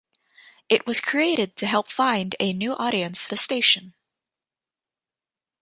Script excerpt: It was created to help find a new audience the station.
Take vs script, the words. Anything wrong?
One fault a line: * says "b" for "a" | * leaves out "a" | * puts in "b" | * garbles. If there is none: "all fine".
all fine